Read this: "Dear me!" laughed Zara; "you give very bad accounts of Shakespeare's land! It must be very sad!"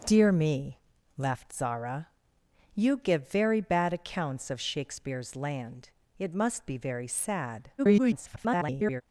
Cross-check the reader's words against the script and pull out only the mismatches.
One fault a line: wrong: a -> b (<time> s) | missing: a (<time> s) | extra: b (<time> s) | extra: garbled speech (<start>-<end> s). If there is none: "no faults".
extra: garbled speech (7.8-9.0 s)